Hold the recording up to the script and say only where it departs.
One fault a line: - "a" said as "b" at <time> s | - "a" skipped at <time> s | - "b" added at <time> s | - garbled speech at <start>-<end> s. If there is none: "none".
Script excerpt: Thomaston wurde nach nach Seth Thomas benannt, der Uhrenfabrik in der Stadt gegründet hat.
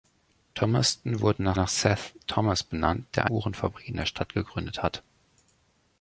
none